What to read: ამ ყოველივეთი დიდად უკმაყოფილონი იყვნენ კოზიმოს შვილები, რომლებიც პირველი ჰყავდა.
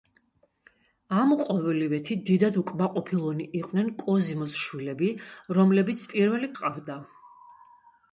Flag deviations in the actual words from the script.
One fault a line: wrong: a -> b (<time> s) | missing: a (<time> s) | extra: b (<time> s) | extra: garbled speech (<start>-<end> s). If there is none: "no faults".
no faults